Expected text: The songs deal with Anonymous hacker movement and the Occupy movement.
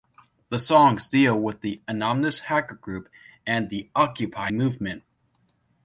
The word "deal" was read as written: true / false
true